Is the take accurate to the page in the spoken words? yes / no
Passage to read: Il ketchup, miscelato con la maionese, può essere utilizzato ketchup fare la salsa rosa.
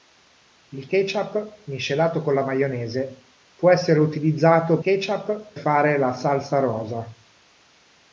yes